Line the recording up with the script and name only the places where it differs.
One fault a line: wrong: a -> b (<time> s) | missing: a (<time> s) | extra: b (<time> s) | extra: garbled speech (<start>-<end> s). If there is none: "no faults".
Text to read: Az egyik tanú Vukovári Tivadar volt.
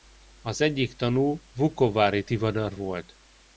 no faults